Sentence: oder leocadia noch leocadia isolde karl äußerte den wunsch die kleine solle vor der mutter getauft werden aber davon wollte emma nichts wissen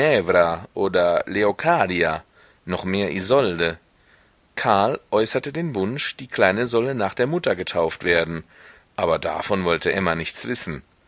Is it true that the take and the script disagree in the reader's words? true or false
true